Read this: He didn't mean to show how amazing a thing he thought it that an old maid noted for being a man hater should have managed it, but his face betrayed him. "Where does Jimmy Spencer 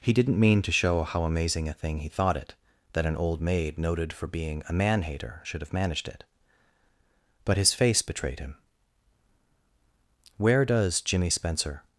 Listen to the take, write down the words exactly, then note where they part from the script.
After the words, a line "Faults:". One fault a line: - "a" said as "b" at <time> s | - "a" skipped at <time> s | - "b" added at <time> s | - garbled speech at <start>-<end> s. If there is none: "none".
He didn't mean to show how amazing a thing he thought it that an old maid noted for being a man hater should have managed it, but his face betrayed him. "Where does Jimmy Spencer
Faults:
none